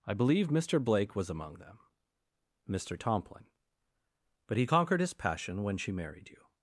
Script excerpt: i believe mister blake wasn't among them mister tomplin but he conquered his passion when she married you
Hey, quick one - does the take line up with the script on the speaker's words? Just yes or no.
no